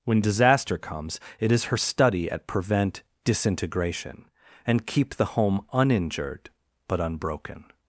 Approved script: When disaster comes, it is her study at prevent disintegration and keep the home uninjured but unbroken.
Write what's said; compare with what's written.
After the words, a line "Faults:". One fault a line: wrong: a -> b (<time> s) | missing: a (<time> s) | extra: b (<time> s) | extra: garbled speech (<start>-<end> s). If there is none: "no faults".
When disaster comes, it is her study at prevent disintegration and keep the home uninjured but unbroken.
Faults:
no faults